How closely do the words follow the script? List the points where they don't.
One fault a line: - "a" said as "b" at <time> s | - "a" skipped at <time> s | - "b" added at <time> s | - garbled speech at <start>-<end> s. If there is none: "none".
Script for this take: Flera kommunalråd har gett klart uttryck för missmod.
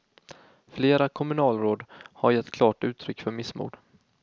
none